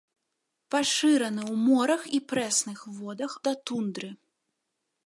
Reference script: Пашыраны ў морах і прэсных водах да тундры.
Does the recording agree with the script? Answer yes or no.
yes